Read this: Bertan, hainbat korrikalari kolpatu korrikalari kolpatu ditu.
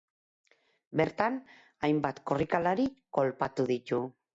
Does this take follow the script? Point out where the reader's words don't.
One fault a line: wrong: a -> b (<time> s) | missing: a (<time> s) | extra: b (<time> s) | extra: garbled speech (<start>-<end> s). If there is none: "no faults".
missing: korrikalari kolpatu (3.7 s)